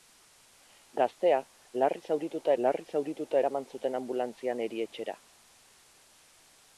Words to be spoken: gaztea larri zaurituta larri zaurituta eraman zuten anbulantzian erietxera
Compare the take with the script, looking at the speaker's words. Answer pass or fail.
pass